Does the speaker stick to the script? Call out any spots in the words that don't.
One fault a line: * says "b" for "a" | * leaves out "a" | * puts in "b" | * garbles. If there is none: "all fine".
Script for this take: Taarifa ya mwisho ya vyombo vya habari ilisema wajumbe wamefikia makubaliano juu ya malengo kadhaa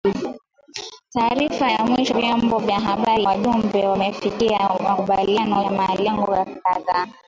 * leaves out "ya"
* leaves out "ilisema"
* leaves out "juu"